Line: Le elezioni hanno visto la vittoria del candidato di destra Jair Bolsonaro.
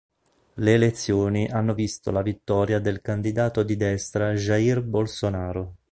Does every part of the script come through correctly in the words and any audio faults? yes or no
yes